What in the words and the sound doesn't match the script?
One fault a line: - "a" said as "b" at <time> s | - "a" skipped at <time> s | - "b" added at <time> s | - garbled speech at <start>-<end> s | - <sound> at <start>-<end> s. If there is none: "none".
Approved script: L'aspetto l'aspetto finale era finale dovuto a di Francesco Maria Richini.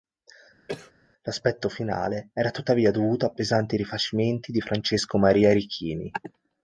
- cough at 0.7-0.9 s
- "l'aspetto" skipped at 1.7 s
- "finale" said as "tuttavia" at 2.5 s
- "pesanti rifacimenti" added at 3.3 s